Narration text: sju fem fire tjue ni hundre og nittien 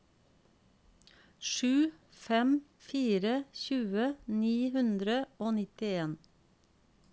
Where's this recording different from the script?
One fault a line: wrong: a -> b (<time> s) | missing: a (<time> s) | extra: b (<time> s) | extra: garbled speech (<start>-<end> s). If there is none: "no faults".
no faults